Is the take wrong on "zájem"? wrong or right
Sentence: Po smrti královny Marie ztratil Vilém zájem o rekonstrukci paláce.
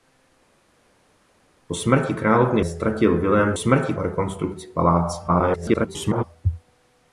wrong